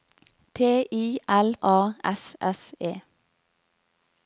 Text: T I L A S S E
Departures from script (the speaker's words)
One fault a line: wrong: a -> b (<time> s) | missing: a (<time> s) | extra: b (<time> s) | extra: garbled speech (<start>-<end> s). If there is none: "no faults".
no faults